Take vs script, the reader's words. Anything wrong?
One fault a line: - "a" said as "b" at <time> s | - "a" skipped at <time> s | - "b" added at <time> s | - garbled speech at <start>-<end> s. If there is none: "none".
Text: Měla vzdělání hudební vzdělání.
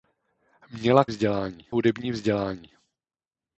none